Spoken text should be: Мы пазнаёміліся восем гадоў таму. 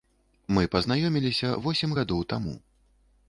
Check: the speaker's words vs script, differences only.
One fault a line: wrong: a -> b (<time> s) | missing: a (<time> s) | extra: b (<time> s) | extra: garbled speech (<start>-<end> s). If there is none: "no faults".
no faults